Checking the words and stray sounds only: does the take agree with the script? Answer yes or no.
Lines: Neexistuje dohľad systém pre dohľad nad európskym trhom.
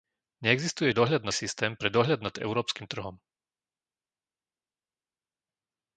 yes